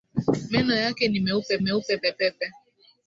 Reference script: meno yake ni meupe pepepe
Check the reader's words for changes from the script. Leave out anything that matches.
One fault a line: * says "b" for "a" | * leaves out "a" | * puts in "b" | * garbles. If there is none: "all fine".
* puts in "meupe"